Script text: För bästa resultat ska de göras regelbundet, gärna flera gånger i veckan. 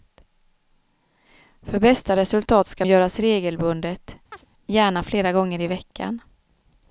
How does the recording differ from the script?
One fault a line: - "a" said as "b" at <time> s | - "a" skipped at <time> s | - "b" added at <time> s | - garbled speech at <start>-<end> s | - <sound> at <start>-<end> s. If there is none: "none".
- "de" skipped at 2.9 s
- chirp at 4.3-4.5 s